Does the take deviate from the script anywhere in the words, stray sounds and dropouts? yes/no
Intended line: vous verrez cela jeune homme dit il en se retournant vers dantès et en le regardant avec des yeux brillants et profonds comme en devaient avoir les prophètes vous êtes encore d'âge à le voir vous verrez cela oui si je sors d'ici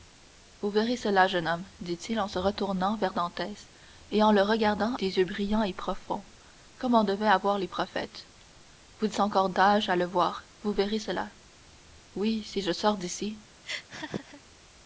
yes